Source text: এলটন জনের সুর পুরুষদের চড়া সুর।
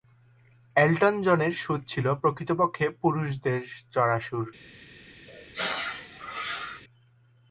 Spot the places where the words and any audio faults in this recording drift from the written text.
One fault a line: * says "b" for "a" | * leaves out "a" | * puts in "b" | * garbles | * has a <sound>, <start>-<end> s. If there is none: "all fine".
* puts in "ছিল প্রকৃতপক্ষে"
* has a sneeze, 5.3-6.8 s